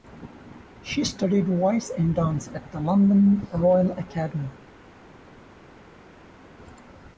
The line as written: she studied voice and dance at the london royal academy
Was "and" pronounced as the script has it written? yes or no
yes